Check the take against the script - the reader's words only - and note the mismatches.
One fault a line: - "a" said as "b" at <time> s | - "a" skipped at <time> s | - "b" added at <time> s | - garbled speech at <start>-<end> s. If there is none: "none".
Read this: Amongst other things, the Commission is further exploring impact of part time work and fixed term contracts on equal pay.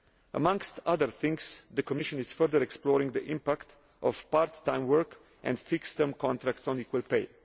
- "the" added at 3.1 s